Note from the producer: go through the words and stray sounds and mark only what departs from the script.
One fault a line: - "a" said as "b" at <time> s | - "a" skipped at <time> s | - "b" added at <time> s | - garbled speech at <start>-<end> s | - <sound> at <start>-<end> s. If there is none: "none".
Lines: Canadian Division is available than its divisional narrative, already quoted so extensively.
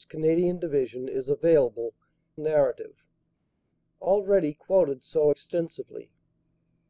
- "than its divisional" skipped at 1.9 s